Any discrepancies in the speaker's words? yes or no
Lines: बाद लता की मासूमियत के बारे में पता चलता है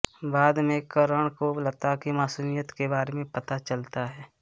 yes